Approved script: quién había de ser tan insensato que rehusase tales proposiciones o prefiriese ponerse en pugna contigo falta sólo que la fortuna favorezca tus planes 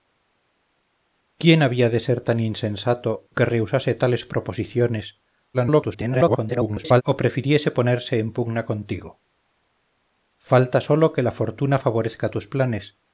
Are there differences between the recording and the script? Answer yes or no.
yes